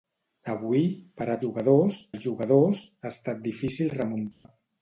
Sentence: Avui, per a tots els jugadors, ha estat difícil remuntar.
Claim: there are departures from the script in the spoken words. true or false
true